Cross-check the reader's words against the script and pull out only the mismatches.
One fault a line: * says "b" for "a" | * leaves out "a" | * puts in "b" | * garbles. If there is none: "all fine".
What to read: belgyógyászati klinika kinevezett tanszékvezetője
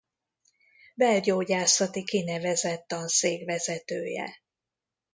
* leaves out "klinika"